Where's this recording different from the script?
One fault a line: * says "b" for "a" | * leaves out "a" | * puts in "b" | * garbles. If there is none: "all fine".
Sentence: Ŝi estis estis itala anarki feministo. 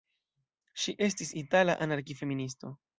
* leaves out "estis"